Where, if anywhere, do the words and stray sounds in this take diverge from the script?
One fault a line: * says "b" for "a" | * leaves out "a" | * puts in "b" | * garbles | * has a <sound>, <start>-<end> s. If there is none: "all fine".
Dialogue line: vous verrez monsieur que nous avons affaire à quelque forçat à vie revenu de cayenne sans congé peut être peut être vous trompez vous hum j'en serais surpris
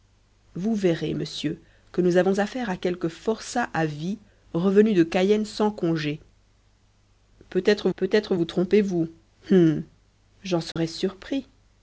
* has a dropout, 10.7-10.8 s